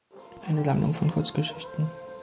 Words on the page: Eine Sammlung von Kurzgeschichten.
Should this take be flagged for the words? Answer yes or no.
no